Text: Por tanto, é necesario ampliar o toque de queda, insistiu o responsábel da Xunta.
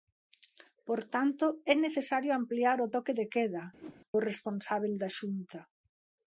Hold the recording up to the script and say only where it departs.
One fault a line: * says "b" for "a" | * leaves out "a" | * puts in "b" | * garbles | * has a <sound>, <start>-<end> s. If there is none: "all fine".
* leaves out "insistiu"
* has a whoosh, 3.8-4.0 s